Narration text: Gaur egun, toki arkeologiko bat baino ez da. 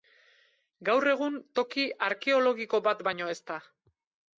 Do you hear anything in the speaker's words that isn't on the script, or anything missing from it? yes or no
no